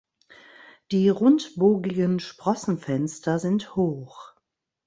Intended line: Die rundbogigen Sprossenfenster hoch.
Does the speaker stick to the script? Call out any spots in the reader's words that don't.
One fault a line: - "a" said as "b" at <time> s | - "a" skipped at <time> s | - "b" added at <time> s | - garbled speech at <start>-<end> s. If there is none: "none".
- "sind" added at 3.3 s